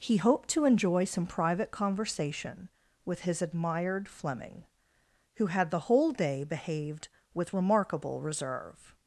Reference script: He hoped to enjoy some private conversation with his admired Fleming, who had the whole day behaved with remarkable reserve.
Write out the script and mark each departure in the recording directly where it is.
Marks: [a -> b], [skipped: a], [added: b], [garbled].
He hoped to enjoy some private conversation with his admired Fleming, who had the whole day behaved with remarkable reserve.